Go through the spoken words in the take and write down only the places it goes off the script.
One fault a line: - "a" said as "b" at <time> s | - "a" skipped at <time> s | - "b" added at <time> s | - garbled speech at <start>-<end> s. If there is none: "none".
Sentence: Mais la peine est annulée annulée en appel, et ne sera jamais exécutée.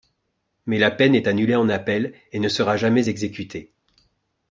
- "annulée" skipped at 1.6 s